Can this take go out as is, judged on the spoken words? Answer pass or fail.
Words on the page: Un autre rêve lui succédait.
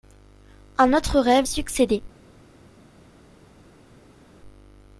fail